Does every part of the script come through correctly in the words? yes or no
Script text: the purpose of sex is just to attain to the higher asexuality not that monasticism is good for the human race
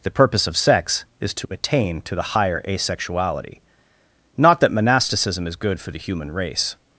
no